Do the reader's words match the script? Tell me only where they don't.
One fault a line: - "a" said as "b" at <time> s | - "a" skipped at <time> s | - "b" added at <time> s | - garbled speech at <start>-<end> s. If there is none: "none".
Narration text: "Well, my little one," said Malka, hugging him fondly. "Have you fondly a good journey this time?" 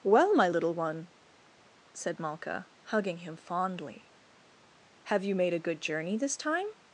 - "fondly" said as "made" at 5.3 s